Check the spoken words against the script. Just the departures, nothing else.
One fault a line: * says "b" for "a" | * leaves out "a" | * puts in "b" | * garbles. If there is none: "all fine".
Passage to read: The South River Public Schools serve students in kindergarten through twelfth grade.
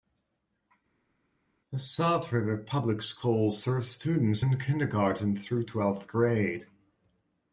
all fine